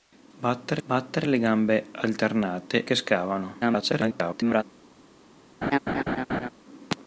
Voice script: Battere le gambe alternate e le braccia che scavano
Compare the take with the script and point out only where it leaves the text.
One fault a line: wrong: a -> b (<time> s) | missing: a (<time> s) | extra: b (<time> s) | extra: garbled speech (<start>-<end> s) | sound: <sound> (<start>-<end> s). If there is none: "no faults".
extra: battere (0.9 s)
missing: e le braccia (2.8 s)
extra: garbled speech (3.6-4.6 s)
sound: laugh (5.6-6.5 s)